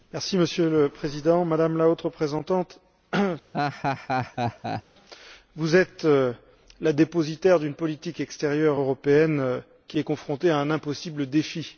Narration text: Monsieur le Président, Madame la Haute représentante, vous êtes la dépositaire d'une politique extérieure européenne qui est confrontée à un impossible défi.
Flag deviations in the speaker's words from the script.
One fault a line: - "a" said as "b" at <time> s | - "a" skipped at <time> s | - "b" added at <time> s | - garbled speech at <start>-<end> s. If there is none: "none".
none